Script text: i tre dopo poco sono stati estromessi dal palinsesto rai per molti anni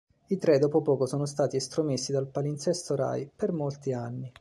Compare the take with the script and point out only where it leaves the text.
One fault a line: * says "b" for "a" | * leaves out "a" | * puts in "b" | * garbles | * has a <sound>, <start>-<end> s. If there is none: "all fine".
all fine